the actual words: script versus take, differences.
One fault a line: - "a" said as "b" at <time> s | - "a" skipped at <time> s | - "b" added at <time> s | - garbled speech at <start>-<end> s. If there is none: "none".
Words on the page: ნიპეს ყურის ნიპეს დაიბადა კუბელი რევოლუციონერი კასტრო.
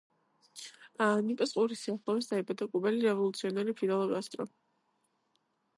- "ნიპეს" said as "სიახლოვეს" at 1.9 s
- "ფიდელ" added at 3.8 s